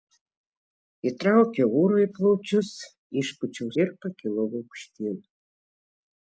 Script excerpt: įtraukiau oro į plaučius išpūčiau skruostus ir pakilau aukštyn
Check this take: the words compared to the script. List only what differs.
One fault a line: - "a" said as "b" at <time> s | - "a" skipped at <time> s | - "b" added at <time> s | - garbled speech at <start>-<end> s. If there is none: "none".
- "skruostus" skipped at 3.7 s